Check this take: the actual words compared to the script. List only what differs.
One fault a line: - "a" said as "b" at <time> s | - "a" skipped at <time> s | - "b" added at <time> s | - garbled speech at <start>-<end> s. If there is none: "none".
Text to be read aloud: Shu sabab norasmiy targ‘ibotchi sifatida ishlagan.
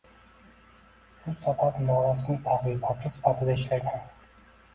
none